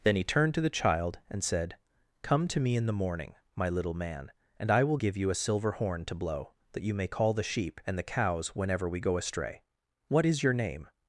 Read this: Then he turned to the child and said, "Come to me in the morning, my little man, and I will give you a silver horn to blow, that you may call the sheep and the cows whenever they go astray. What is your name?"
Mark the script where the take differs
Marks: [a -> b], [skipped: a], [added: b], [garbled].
Then he turned to the child and said, "Come to me in the morning, my little man, and I will give you a silver horn to blow, that you may call the sheep and the cows whenever [they -> we] go astray. What is your name?"